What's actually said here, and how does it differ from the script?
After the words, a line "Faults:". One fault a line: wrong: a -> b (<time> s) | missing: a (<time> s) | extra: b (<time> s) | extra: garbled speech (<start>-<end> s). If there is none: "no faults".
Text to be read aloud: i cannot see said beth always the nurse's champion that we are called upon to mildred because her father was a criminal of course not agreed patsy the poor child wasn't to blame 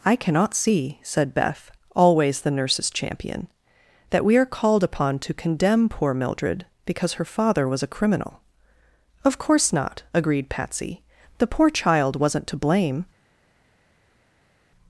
i cannot see said beth always the nurse's champion that we are called upon to condemn poor mildred because her father was a criminal of course not agreed patsy the poor child wasn't to blame
Faults:
extra: condemn poor (5.3 s)